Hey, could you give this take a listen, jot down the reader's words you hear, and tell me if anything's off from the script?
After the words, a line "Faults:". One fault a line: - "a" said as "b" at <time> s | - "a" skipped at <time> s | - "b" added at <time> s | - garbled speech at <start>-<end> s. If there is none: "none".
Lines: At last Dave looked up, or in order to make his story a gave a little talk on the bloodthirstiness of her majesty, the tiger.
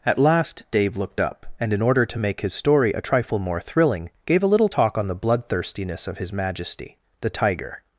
At last Dave looked up, and in order to make his story a trifle more thrilling, gave a little talk on the bloodthirstiness of his majesty, the tiger.
Faults:
- "or" said as "and" at 1.6 s
- "trifle more thrilling" added at 3.0 s
- "her" said as "his" at 6.2 s